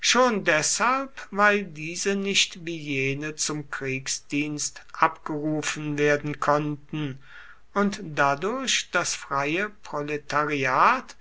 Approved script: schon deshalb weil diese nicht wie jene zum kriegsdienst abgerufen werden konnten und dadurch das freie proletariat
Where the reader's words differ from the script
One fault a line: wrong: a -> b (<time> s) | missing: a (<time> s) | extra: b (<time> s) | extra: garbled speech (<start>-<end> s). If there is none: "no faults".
no faults